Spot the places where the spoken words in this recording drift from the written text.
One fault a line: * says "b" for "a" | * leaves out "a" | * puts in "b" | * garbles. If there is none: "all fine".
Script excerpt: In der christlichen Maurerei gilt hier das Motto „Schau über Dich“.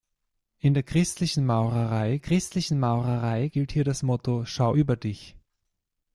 * puts in "christlichen Maurerei"